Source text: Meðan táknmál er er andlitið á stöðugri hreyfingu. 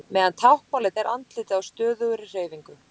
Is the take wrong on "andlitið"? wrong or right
right